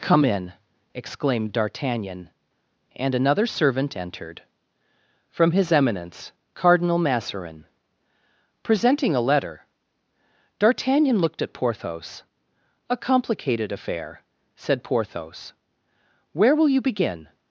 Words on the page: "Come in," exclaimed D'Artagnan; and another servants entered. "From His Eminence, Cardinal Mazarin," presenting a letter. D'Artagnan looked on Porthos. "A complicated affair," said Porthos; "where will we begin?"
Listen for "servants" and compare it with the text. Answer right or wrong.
wrong